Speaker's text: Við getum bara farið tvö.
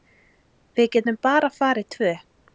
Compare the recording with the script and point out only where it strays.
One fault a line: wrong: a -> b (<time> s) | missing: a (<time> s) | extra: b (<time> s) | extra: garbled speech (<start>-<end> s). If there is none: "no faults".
no faults